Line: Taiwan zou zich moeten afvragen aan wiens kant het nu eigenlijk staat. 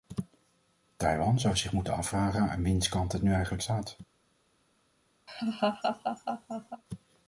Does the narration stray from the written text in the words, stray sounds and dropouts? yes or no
yes